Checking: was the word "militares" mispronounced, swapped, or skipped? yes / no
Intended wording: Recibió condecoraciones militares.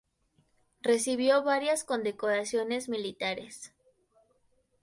no